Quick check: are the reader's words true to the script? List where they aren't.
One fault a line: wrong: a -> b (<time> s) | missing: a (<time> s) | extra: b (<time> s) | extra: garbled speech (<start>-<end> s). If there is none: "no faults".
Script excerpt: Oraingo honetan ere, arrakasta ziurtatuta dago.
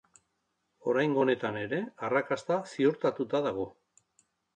no faults